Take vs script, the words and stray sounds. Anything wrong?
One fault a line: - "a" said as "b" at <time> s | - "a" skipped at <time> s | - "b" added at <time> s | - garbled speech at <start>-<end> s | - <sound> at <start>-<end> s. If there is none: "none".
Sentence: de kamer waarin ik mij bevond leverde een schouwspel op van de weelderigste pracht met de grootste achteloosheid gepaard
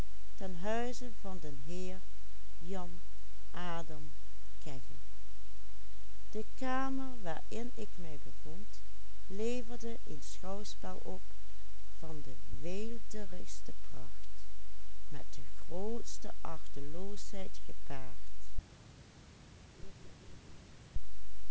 - laugh at 19.7-20.8 s